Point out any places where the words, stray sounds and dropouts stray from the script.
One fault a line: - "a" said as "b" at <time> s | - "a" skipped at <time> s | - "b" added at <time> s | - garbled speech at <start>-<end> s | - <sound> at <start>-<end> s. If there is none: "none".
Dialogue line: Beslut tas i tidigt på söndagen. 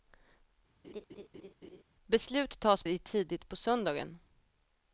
- laugh at 0.8-1.8 s